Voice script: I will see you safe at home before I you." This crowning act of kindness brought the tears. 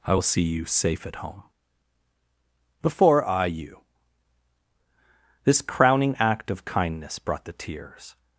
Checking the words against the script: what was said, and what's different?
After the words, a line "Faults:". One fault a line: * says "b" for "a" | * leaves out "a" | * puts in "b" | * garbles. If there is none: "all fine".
I will see you safe at home before I you." This crowning act of kindness brought the tears.
Faults:
all fine